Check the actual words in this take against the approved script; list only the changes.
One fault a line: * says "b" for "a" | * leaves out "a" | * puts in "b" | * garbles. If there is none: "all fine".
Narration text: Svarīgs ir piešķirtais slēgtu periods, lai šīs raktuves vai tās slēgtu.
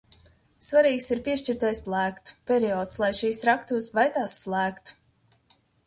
all fine